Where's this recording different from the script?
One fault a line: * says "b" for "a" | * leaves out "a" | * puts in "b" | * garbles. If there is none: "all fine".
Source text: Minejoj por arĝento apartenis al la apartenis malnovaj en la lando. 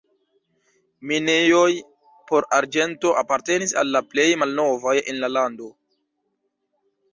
* says "plej" for "apartenis"